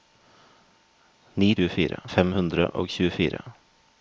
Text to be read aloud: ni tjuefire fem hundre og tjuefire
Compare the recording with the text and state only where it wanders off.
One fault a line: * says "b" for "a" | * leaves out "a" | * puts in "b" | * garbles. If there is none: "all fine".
all fine